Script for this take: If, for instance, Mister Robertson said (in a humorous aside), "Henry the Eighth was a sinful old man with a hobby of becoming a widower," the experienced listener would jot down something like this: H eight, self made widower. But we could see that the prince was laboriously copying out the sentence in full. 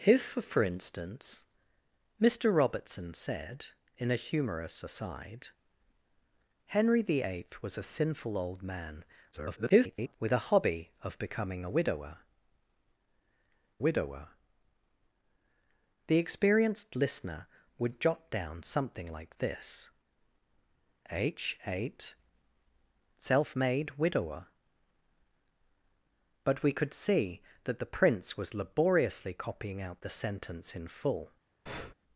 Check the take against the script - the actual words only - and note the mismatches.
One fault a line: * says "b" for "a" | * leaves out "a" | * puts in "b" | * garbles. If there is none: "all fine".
* garbles
* puts in "widower"